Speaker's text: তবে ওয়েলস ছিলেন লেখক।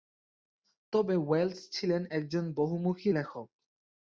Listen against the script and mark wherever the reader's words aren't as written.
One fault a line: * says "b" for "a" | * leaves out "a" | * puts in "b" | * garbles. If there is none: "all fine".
* puts in "একজন বহুমুখী"